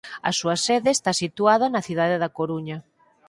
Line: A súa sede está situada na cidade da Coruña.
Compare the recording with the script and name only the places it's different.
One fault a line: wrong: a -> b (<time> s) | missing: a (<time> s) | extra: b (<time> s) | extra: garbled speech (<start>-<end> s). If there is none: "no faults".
no faults